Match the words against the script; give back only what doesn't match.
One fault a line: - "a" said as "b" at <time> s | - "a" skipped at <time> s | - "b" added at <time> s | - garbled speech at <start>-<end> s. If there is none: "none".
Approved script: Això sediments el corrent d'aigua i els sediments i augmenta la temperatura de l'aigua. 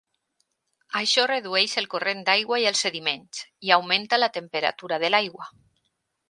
- "sediments" said as "redueix" at 1.3 s